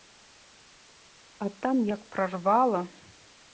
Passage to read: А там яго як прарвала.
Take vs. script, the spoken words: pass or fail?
fail